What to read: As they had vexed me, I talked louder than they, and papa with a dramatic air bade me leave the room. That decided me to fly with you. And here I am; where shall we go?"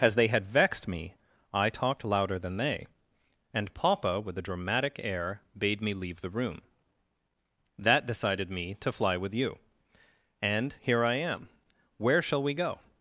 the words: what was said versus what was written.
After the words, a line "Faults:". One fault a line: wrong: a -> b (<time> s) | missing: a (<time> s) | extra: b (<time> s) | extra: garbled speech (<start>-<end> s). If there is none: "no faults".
As they had vexed me, I talked louder than they, and papa with a dramatic air bade me leave the room. That decided me to fly with you. And here I am; where shall we go?"
Faults:
no faults